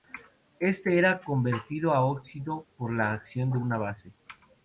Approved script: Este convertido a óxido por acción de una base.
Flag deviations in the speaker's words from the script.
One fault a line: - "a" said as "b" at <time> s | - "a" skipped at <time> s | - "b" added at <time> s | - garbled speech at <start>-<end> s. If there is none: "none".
- "era" added at 1.0 s
- "la" added at 2.9 s